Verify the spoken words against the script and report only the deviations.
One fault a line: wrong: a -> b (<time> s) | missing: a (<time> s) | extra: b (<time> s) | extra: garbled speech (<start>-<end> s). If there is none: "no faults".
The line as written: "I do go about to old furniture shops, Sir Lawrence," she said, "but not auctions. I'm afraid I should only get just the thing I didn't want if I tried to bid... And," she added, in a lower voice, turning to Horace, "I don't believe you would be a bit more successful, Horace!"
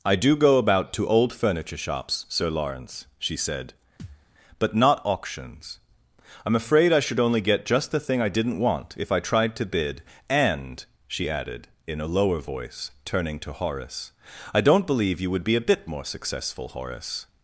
no faults